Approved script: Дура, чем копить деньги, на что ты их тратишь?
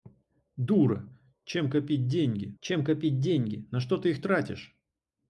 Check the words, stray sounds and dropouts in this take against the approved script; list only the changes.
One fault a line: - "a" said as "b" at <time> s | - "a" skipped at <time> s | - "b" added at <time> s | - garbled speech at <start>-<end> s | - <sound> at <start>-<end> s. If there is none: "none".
- "чем копить деньги" added at 2.6 s